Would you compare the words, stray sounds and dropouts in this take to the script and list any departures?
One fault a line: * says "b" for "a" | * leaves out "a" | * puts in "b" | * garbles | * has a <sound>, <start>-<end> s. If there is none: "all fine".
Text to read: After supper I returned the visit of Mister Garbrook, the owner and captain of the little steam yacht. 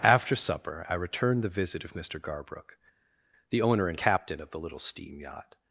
all fine